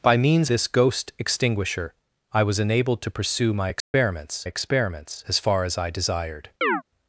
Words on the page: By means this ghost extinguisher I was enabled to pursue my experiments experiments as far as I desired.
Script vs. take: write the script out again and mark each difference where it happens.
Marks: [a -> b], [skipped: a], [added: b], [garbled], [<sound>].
By means this ghost extinguisher I was enabled to pursue my experiments [dropout] experiments as far as I desired. [chirp]